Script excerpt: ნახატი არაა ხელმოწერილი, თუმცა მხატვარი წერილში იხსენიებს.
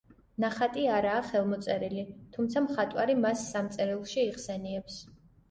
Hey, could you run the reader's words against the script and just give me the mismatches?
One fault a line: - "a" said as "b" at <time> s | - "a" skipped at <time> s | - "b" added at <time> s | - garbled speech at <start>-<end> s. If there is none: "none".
- "მას სამ" added at 3.3 s